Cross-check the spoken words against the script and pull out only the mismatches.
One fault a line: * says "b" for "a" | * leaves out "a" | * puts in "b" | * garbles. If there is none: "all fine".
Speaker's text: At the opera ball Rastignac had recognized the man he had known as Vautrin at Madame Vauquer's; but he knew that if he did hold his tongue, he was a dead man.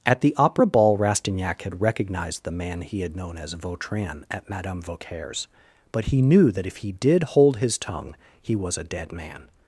all fine